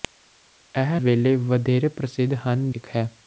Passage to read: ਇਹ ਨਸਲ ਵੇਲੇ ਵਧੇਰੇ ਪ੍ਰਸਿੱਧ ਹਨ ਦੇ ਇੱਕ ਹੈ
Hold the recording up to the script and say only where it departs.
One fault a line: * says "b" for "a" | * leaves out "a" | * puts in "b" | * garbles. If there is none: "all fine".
* leaves out "ਨਸਲ"
* leaves out "ਦੇ"